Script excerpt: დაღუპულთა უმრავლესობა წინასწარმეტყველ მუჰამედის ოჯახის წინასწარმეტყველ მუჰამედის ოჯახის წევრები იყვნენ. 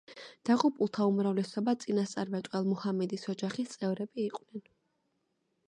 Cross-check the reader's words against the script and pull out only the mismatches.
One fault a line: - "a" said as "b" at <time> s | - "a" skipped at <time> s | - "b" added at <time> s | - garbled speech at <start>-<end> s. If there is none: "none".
- "წინასწარმეტყველ მუჰამედის ოჯახის" skipped at 3.8 s